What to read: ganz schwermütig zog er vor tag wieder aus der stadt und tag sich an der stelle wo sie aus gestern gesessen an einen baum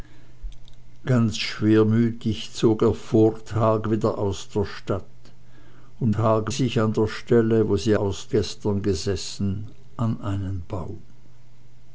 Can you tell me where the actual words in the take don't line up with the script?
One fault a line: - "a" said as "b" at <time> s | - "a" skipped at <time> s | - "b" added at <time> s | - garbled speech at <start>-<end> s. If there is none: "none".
none